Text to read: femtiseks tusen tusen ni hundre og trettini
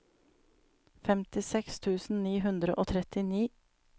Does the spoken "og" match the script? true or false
true